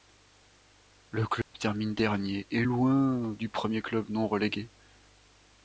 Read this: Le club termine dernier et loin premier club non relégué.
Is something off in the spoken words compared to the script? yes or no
yes